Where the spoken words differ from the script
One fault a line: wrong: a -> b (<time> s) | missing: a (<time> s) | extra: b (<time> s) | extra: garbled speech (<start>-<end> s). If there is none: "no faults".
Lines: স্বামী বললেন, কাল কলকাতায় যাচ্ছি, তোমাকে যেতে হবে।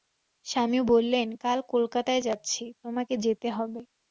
no faults